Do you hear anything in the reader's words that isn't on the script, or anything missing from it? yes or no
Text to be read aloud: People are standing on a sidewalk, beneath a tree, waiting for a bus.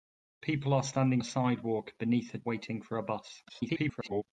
yes